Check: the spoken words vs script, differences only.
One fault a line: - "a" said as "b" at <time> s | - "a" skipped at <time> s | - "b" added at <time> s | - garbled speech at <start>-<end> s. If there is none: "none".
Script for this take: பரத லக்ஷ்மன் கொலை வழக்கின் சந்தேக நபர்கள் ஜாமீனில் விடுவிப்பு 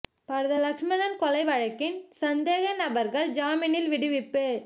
none